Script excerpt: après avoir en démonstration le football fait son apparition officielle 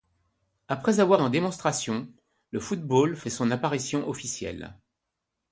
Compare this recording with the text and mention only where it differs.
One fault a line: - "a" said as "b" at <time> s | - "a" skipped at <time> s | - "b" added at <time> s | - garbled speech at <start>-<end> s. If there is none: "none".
none